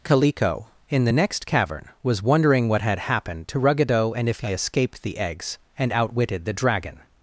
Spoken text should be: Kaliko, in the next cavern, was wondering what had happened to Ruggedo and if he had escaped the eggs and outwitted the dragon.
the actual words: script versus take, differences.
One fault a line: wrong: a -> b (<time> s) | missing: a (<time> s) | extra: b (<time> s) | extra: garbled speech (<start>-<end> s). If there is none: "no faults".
missing: had (4.5 s)